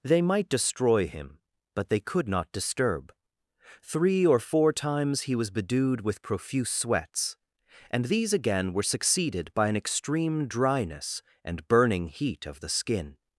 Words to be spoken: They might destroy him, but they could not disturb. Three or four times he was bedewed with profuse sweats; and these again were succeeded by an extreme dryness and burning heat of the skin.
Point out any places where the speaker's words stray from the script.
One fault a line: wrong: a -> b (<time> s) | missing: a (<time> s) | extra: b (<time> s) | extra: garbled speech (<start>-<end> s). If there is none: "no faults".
no faults